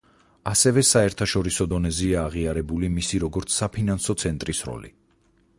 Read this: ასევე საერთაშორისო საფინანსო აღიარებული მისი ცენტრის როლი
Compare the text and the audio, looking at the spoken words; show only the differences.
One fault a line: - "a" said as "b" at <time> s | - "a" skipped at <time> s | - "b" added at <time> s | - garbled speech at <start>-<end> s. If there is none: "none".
- "საფინანსო" said as "დონეზეა" at 1.7 s
- "როგორც საფინანსო" added at 3.3 s